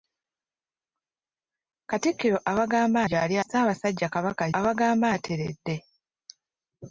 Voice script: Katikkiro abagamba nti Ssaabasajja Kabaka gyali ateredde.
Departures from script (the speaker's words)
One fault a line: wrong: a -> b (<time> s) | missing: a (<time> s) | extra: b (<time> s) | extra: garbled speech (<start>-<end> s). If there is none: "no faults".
wrong: nti -> gyali (3.1 s)
wrong: gyali -> abagamba (4.6 s)